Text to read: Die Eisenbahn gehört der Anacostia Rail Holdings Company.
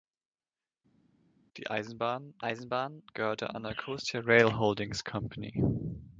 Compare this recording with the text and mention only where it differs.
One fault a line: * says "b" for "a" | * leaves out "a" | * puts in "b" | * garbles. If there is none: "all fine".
* puts in "Eisenbahn"